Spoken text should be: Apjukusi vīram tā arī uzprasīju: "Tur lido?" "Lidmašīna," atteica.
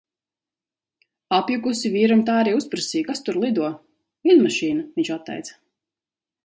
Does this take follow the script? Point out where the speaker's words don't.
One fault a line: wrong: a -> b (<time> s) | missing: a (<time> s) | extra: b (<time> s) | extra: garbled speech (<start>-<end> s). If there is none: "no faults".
extra: Kas (3.1 s)
extra: viņš (5.0 s)